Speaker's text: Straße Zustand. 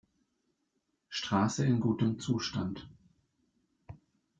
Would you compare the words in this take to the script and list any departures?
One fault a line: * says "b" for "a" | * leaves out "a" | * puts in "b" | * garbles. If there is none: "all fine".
* puts in "in gutem"